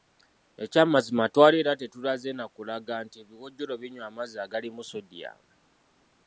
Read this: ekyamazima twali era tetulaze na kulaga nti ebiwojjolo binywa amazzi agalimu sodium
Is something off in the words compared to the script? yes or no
no